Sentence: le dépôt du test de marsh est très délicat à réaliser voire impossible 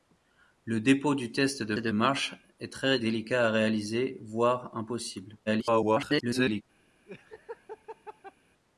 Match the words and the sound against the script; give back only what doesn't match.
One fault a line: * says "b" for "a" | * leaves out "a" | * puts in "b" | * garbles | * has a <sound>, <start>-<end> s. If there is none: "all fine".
* puts in "de"
* garbles
* has a laugh, 7.1-8.3 s